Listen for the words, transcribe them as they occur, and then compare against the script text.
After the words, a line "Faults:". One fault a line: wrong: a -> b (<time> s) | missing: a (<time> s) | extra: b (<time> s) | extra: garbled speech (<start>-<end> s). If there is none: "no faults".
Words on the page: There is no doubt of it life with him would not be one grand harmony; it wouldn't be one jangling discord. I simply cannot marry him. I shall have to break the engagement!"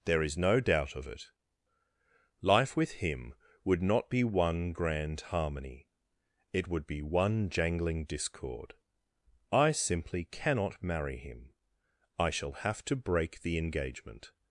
There is no doubt of it life with him would not be one grand harmony; it would be one jangling discord. I simply cannot marry him. I shall have to break the engagement!"
Faults:
wrong: wouldn't -> would (6.7 s)